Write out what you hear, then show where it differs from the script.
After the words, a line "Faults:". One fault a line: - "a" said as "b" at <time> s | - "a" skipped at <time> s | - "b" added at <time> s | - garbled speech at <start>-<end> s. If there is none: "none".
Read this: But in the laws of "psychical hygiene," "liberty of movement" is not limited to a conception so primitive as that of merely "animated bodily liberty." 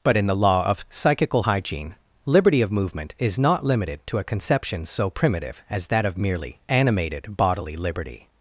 But in the law of "psychical hygiene," "liberty of movement" is not limited to a conception so primitive as that of merely "animated bodily liberty."
Faults:
- "laws" said as "law" at 0.3 s